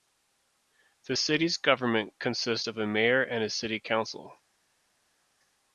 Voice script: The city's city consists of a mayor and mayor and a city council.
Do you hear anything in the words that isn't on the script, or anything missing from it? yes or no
yes